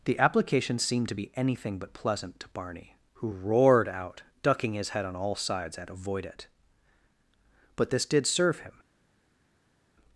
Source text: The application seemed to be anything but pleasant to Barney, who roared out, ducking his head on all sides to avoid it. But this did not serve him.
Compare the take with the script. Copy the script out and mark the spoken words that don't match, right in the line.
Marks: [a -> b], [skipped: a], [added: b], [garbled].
The application seemed to be anything but pleasant to Barney, who roared out, ducking his head on all sides [to -> at] avoid it. But this did [skipped: not] serve him.